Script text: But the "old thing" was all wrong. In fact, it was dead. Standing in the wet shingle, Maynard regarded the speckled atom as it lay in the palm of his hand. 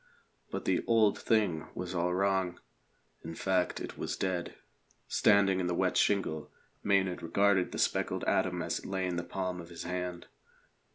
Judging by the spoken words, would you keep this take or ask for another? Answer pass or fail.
pass